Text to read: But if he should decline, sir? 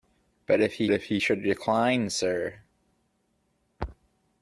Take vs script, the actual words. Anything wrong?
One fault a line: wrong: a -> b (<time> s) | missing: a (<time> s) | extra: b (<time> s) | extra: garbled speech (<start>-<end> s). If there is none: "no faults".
extra: if he (0.9 s)